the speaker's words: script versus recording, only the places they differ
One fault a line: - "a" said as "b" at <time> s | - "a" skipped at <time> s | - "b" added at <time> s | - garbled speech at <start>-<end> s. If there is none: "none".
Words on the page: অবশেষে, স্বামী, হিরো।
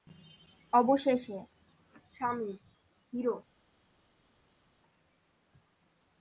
none